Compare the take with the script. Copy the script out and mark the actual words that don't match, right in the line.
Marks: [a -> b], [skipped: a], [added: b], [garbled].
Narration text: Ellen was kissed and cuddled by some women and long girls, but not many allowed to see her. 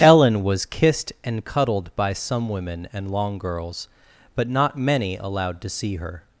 Ellen was kissed and cuddled by some women and long girls, but not many allowed to see her.